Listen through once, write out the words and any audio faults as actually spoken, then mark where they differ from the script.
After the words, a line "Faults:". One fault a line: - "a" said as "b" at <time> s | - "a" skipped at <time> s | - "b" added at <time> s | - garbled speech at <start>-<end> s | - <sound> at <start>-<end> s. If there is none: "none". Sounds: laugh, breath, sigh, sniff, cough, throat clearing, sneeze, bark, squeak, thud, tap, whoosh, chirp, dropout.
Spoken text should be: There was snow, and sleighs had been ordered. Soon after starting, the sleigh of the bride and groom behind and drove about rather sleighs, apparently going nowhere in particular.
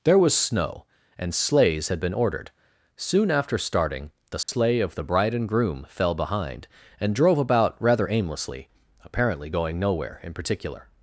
There was snow, and sleighs had been ordered. Soon after starting, the sleigh of the bride and groom fell behind and drove about rather aimlessly, apparently going nowhere in particular.
Faults:
- dropout at 4.4-4.5 s
- "fell" added at 5.9 s
- "sleighs" said as "aimlessly" at 8.1 s